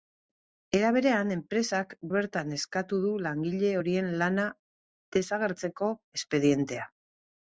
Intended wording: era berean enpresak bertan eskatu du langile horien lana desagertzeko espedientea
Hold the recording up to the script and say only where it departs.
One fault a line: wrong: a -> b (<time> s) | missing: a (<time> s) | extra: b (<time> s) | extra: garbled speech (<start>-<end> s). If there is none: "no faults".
no faults